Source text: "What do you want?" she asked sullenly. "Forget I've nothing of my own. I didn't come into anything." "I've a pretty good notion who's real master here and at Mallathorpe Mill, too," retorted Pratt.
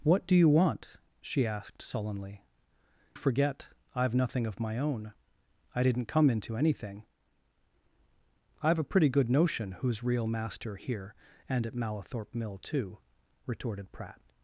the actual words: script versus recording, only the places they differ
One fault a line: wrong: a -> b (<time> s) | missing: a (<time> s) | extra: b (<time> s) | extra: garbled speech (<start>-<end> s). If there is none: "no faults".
no faults